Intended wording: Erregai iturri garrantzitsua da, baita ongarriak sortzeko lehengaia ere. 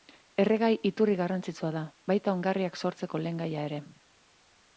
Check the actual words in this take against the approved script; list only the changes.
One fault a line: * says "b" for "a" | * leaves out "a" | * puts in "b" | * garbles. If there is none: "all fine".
all fine